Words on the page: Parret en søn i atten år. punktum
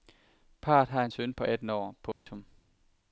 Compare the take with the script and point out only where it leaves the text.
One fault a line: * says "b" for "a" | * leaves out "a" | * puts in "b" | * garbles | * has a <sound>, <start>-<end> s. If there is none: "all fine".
* puts in "har"
* says "på" for "i"
* has a dropout, 2.1-2.3 s